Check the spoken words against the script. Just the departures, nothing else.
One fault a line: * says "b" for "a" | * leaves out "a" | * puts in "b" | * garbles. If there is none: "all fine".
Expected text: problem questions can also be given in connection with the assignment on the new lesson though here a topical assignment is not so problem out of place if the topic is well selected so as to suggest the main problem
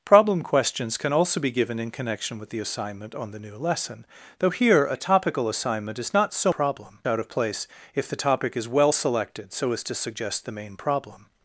all fine